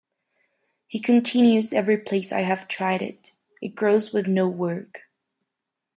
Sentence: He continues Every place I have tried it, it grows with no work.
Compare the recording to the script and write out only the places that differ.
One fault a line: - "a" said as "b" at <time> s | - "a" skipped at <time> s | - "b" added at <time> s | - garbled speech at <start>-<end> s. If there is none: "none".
none